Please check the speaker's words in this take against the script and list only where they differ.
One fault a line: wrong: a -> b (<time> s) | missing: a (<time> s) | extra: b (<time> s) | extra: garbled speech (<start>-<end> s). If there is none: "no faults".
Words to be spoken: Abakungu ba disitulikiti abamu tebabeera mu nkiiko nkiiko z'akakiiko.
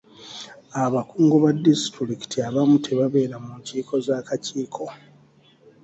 missing: nkiiko (3.9 s)